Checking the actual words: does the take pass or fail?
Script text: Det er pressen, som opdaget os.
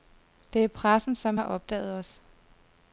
fail